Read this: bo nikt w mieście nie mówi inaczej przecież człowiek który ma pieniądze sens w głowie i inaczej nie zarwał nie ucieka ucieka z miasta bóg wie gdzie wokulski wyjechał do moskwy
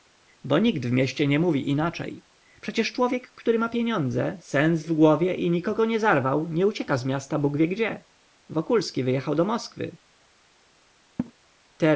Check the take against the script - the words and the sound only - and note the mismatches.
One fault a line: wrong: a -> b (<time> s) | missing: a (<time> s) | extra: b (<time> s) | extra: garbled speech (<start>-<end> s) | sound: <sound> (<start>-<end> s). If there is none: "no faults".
wrong: inaczej -> nikogo (5.5 s)
missing: ucieka (7.0 s)
sound: laugh (11.2-11.3 s)